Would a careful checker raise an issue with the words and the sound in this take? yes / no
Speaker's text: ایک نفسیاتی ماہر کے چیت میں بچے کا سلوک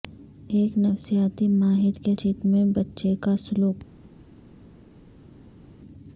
no